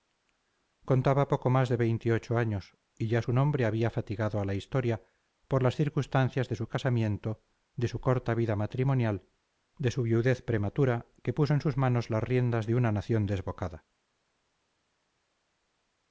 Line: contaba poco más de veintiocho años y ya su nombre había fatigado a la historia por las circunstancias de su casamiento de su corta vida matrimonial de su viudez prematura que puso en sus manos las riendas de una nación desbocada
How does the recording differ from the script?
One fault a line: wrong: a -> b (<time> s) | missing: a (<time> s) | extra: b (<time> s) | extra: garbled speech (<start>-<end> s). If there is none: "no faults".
no faults